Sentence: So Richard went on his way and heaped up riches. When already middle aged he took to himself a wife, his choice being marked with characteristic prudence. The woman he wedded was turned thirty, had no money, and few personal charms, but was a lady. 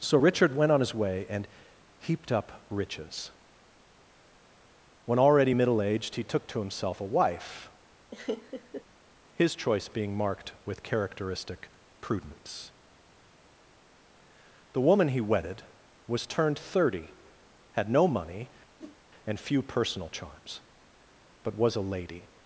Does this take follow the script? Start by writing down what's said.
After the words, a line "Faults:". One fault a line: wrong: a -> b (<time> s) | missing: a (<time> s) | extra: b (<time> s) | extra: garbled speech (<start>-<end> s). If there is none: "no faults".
So Richard went on his way and heaped up riches. When already middle aged he took to himself a wife, his choice being marked with characteristic prudence. The woman he wedded was turned thirty, had no money, and few personal charms, but was a lady.
Faults:
no faults